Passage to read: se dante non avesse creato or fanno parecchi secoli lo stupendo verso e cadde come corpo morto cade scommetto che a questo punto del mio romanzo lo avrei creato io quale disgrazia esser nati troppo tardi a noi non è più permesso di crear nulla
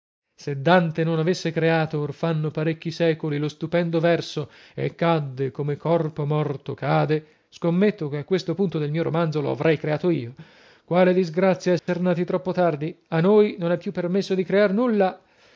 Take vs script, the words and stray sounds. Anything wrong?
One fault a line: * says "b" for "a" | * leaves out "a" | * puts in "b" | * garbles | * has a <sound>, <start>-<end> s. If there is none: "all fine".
* has a dropout, 11.8-11.9 s